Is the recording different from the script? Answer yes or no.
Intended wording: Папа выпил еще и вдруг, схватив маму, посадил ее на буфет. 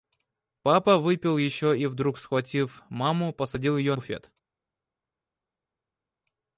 yes